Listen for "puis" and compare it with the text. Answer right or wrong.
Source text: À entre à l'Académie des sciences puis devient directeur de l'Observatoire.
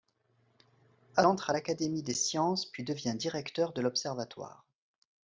right